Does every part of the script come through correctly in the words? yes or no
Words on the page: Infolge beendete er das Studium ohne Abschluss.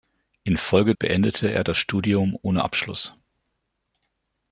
yes